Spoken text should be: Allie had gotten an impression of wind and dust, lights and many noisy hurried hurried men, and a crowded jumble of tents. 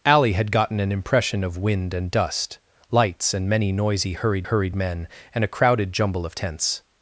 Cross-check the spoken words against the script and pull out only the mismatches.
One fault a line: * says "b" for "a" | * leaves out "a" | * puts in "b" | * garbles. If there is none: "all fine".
all fine